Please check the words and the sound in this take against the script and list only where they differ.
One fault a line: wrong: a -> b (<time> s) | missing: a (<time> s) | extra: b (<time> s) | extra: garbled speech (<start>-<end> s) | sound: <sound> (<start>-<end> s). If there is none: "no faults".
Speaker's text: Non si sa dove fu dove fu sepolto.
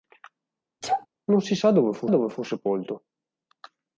sound: sneeze (0.8-1.1 s)